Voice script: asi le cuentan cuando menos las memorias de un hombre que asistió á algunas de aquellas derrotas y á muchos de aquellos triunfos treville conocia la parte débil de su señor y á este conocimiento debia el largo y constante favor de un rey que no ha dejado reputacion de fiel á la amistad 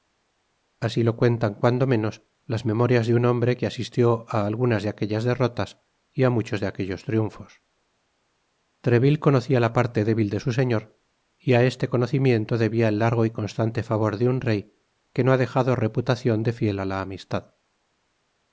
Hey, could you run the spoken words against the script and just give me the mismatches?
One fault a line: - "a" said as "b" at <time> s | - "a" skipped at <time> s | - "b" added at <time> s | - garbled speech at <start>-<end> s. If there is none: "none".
- "le" said as "lo" at 1.0 s